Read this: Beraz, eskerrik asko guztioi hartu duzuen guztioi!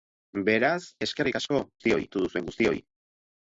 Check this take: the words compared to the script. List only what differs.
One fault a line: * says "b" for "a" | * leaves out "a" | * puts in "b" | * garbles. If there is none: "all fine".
all fine